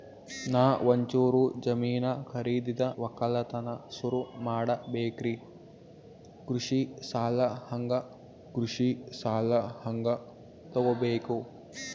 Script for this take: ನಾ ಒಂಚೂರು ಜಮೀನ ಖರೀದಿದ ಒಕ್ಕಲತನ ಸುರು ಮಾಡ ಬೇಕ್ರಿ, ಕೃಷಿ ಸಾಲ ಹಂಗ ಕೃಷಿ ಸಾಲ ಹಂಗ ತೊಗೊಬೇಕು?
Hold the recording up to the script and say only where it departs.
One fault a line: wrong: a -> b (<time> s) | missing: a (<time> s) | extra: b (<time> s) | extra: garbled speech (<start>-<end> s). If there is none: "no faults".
no faults